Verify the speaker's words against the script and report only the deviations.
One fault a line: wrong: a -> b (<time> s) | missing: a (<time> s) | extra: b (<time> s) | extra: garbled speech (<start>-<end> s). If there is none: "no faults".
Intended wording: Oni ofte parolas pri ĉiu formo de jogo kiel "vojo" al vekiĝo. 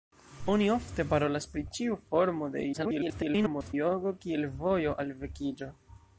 extra: garbled speech (2.7-3.7 s)